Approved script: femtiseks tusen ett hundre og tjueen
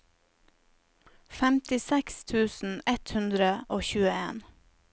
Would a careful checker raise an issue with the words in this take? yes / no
no